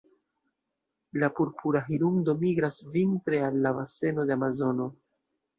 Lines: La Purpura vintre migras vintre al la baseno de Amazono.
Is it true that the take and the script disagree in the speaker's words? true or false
true